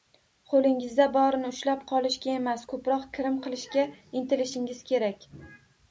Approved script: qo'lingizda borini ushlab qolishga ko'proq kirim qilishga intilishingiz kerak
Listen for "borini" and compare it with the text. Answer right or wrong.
right